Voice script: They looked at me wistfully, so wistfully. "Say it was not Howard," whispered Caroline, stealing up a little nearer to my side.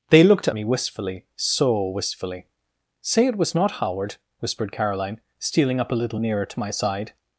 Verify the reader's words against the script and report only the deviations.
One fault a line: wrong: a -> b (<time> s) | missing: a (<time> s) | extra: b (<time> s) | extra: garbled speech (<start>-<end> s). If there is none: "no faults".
no faults